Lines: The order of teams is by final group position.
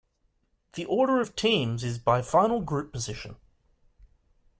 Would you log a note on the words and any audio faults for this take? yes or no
no